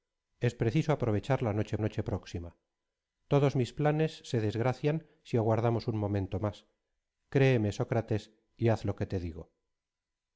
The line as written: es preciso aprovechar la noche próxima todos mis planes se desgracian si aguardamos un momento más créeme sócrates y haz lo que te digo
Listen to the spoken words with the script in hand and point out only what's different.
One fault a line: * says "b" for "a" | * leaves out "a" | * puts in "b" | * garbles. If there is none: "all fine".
* puts in "noche"